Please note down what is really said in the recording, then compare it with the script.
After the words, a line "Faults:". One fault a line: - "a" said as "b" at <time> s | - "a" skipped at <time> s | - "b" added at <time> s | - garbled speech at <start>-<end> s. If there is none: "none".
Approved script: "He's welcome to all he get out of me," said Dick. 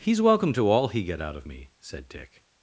"He's welcome to all he get out of me," said Dick.
Faults:
none